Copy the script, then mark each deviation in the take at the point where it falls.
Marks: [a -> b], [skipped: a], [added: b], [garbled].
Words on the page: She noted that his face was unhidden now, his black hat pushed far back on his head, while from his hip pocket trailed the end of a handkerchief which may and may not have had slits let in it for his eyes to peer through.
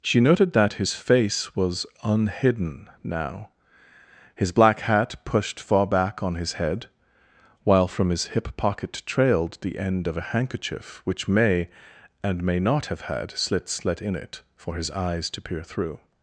She noted that his face was unhidden now, his black hat pushed far back on his head, while from his hip pocket trailed the end of a handkerchief which may and may not have had slits let in it for his eyes to peer through.